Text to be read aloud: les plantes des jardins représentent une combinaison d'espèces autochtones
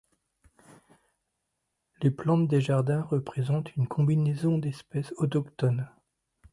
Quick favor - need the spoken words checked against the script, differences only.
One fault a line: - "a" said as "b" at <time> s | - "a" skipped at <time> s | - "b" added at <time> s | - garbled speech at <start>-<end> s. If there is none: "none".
none